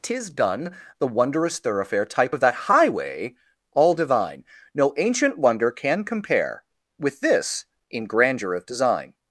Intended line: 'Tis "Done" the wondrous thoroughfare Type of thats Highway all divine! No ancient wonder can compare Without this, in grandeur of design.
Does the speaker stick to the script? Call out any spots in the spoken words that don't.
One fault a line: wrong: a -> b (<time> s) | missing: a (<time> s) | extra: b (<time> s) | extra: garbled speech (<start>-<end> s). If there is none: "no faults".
wrong: thats -> that (2.4 s)
wrong: Without -> With (7.0 s)